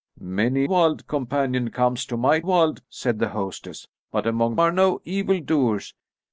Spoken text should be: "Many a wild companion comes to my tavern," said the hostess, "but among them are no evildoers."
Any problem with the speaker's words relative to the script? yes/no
yes